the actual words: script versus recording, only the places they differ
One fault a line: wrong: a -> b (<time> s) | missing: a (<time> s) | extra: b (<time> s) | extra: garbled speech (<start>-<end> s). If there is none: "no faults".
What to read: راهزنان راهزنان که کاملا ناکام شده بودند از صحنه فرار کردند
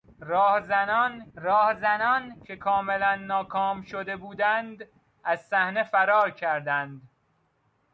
no faults